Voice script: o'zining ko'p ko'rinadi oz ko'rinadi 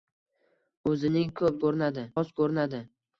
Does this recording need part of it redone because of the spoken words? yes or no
no